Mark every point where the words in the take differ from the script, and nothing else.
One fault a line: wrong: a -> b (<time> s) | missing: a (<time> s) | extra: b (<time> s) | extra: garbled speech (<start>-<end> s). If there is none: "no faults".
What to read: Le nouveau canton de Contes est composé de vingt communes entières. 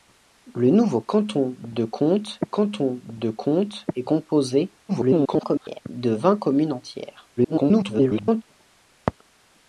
extra: canton de Contes (2.4 s)
extra: garbled speech (4.9-5.8 s)
extra: garbled speech (7.4-8.4 s)